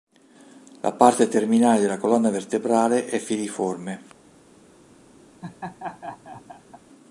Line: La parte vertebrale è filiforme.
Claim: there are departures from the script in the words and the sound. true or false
true